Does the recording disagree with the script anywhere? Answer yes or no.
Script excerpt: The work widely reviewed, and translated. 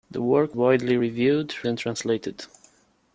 no